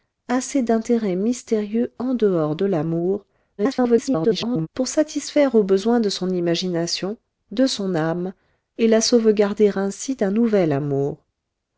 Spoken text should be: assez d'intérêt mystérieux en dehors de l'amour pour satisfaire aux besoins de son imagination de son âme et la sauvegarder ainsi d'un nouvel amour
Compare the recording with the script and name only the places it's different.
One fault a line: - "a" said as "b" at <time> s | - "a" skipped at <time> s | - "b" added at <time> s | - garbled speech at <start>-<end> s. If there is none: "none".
- garbled speech at 3.6-4.7 s